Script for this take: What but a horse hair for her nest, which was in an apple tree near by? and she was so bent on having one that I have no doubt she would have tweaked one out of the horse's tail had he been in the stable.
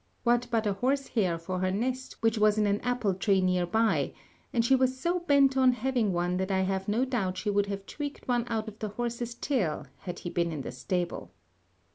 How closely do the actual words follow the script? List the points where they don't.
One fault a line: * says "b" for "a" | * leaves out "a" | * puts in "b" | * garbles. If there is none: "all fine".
all fine